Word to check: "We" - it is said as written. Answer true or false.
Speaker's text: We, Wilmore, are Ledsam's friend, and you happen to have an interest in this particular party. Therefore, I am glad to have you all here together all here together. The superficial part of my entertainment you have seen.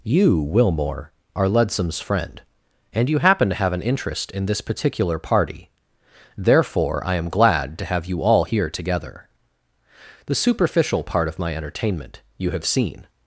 false